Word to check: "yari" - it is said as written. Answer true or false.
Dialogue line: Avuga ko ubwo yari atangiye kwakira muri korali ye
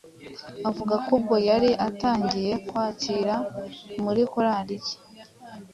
true